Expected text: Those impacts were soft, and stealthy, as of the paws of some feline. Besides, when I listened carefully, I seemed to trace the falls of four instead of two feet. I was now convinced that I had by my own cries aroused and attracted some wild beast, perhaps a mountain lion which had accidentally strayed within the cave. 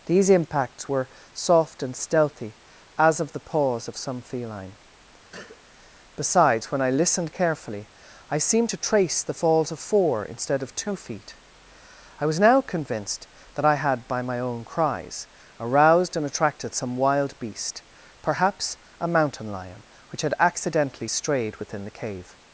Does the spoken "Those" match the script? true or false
false